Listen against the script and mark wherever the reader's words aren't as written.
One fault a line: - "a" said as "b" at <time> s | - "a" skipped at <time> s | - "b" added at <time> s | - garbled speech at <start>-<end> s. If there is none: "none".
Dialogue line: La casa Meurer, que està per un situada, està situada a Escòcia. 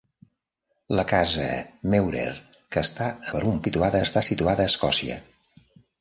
none